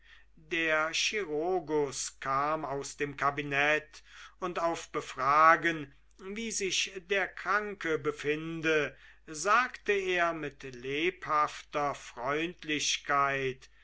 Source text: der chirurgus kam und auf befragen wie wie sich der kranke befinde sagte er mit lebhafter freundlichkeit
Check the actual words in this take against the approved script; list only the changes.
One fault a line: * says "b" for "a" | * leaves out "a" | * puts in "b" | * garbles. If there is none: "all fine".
* puts in "aus dem kabinett"
* leaves out "wie"